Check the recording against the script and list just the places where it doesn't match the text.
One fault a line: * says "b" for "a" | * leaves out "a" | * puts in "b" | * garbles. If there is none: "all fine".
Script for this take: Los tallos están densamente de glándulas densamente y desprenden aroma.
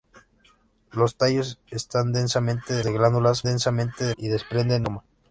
all fine